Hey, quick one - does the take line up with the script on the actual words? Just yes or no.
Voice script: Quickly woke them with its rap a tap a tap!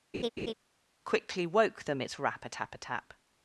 no